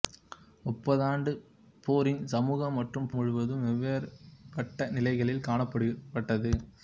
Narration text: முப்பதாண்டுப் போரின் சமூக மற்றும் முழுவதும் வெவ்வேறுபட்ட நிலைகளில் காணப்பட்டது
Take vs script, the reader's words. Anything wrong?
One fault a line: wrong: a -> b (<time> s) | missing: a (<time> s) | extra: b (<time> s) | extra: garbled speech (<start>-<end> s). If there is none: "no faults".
no faults